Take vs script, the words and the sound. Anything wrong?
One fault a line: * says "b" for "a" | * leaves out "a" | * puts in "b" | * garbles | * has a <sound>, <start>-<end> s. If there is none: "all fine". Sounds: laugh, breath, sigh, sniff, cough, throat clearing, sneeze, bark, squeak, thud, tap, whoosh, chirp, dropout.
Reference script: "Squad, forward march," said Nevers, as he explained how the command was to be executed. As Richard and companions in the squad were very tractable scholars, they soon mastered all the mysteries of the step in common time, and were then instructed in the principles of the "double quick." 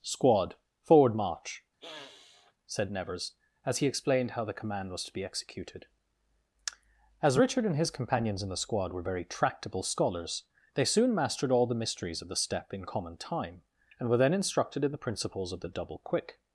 * has a sniff, 1.8-2.5 s
* puts in "his"